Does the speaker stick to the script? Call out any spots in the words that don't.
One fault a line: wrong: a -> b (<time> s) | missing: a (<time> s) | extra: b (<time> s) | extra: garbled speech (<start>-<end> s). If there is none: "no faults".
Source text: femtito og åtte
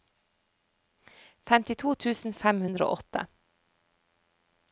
extra: tusen fem hundre (2.0 s)